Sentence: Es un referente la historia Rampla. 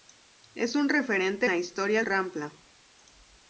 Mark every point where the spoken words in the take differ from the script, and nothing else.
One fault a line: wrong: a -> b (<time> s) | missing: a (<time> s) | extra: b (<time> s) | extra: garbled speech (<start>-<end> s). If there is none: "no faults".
no faults